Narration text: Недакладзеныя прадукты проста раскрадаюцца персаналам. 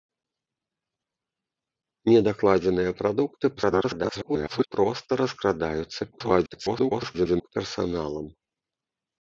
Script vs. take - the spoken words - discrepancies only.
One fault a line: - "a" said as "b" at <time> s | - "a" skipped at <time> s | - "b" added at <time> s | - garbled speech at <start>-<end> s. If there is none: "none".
- garbled speech at 3.6-4.7 s
- garbled speech at 6.1-7.5 s